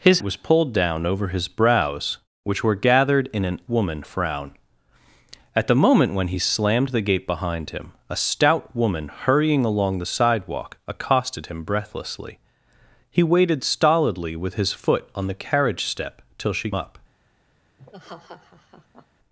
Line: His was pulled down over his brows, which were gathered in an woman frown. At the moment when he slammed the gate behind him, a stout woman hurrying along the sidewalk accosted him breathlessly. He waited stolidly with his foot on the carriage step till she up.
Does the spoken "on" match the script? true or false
true